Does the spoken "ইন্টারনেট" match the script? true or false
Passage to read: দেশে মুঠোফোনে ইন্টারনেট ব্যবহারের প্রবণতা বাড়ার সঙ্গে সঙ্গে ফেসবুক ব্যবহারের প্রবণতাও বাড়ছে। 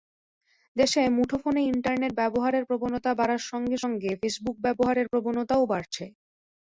true